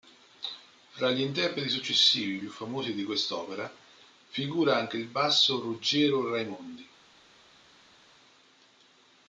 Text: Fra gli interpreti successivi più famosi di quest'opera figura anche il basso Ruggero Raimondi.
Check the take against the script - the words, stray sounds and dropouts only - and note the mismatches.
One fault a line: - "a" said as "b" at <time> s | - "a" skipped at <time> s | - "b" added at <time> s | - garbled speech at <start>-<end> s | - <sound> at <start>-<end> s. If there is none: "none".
none